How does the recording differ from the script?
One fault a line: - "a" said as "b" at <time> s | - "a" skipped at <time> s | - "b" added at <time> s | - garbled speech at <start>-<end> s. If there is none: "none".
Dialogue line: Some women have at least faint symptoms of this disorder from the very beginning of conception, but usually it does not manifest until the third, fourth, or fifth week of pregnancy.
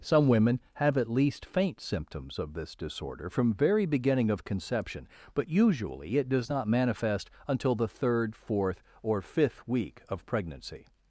- "the" skipped at 3.5 s